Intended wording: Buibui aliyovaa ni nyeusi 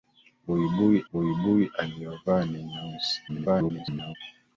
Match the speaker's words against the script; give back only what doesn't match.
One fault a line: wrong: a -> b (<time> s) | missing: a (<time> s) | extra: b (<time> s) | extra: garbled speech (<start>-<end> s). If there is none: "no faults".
extra: buibui (1.1 s)
extra: garbled speech (3.3-4.2 s)